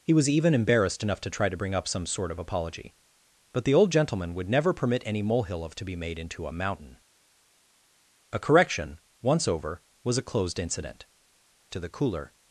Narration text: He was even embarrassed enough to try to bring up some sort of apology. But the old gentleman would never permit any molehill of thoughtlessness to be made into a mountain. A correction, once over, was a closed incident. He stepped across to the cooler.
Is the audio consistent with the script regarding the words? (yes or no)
no